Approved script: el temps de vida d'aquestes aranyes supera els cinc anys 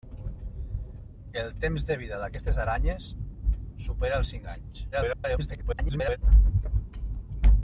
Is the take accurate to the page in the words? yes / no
no